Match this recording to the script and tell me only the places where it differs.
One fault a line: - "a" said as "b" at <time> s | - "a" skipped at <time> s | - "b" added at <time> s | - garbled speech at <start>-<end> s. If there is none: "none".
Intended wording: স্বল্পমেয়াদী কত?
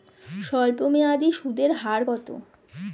- "সুদের হার" added at 1.3 s